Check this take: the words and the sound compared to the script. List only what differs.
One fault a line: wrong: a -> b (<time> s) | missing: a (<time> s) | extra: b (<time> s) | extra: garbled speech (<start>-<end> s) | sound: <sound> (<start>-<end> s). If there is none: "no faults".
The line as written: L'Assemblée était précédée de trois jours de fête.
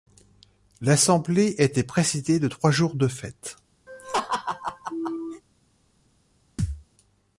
sound: laugh (3.9-5.4 s)
sound: thud (6.6-6.8 s)